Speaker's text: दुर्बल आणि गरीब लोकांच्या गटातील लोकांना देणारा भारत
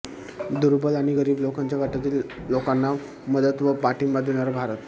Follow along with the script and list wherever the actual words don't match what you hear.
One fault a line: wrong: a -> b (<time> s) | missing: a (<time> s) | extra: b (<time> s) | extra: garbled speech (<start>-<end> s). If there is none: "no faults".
extra: मदत व पाठिंबा (3.3 s)